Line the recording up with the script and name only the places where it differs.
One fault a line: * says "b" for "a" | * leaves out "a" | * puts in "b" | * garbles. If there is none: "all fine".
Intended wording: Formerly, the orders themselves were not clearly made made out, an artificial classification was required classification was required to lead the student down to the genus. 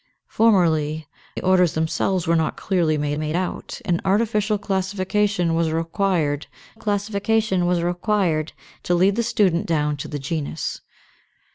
all fine